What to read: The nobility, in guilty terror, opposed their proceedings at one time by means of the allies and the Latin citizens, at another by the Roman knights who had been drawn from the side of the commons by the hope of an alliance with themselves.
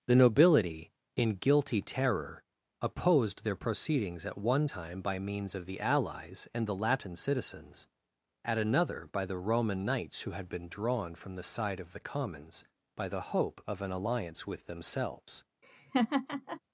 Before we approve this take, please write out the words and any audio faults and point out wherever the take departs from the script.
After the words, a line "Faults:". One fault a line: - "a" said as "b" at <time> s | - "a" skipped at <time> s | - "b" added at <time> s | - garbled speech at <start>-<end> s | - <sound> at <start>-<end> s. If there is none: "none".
The nobility, in guilty terror, opposed their proceedings at one time by means of the allies and the Latin citizens, at another by the Roman knights who had been drawn from the side of the commons by the hope of an alliance with themselves.
Faults:
- laugh at 15.6-16.6 s